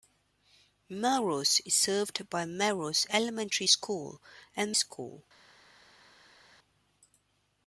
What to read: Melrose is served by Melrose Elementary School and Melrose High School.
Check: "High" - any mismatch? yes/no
yes